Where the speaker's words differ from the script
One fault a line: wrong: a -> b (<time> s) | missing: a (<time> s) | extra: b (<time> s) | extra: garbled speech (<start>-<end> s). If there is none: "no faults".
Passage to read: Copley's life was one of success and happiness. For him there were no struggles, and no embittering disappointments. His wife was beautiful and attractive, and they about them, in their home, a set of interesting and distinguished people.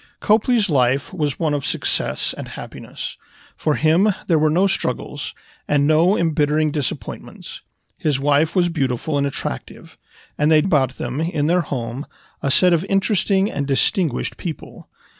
no faults